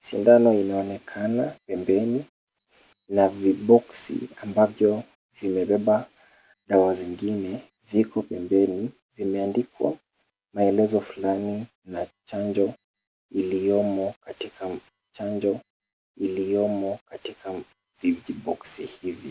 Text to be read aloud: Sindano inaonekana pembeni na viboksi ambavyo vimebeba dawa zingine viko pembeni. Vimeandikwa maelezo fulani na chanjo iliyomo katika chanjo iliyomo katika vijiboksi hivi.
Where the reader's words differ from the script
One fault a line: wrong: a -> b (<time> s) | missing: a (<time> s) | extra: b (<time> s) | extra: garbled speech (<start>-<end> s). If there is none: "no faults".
no faults